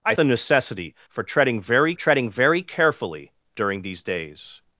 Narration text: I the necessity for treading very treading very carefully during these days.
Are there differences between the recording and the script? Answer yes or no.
no